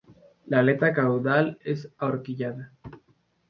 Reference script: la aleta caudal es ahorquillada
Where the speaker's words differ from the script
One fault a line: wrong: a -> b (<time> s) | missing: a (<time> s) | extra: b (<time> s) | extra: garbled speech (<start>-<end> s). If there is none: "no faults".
no faults